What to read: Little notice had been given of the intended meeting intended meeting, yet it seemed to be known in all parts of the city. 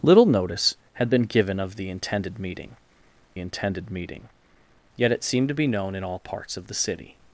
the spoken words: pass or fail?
pass